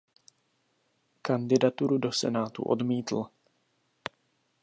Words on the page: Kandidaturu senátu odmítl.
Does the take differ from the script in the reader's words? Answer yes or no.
yes